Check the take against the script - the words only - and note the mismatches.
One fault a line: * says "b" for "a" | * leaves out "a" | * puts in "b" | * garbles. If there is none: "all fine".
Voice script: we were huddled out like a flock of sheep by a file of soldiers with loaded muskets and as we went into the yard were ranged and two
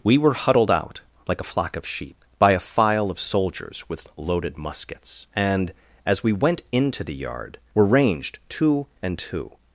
* puts in "two"